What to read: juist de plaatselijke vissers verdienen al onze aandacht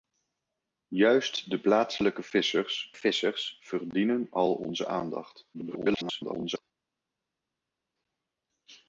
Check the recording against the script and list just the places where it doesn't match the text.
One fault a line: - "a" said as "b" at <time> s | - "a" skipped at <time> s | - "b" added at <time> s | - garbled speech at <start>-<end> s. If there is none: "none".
- "vissers" added at 2.9 s
- garbled speech at 5.5-6.6 s